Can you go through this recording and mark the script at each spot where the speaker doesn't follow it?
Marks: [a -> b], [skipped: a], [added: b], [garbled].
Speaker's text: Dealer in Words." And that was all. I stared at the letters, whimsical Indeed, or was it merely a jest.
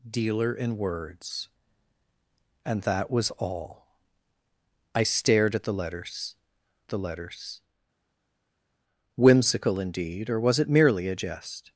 Dealer in Words." And that was all. I stared at the letters, [added: the letters] whimsical Indeed, or was it merely a jest.